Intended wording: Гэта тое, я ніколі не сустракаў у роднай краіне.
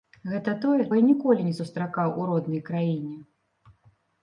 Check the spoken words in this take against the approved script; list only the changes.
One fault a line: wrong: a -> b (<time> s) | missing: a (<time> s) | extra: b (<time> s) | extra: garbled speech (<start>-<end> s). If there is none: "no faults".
no faults